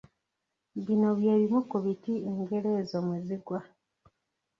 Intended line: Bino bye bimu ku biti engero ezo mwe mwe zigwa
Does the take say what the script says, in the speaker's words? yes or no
no